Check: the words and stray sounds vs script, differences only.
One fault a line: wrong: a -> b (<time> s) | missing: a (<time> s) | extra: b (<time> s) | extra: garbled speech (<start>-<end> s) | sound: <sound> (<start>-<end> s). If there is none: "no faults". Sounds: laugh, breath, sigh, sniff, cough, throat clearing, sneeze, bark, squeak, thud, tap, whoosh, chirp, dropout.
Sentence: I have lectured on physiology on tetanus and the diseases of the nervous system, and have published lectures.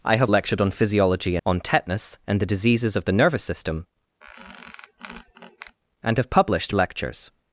sound: squeak (4.2-5.8 s)